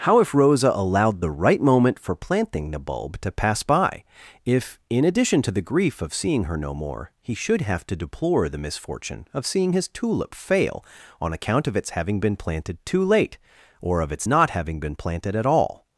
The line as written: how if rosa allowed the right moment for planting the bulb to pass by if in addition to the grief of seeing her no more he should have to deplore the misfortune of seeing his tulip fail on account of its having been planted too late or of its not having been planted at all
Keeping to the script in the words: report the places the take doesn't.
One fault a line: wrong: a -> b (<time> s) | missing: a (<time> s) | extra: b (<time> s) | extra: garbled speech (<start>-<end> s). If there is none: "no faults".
no faults